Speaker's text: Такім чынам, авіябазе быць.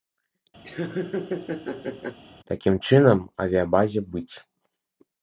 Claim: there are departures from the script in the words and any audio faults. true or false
true